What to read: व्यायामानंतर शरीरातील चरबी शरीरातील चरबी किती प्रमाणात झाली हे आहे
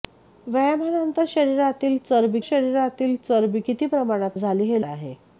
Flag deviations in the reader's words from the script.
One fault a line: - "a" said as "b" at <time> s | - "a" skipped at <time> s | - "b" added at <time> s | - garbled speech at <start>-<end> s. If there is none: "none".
none